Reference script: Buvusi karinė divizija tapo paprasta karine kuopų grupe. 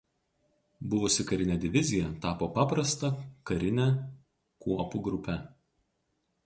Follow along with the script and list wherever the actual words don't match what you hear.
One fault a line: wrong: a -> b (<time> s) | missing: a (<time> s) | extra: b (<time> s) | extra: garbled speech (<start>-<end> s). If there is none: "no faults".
no faults